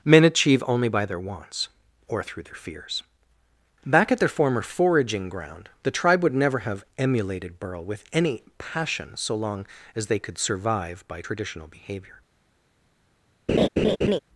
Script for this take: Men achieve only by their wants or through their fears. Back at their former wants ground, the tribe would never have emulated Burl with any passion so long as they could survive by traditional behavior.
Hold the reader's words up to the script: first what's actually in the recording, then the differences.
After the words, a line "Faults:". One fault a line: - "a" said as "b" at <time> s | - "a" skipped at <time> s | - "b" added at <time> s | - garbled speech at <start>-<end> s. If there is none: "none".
Men achieve only by their wants or through their fears. Back at their former foraging ground, the tribe would never have emulated Burl with any passion so long as they could survive by traditional behavior.
Faults:
- "wants" said as "foraging" at 4.6 s